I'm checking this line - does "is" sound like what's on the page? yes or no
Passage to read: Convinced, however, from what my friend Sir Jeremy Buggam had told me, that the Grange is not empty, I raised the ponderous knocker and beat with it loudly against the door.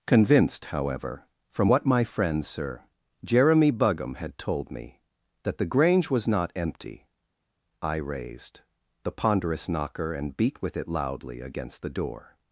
no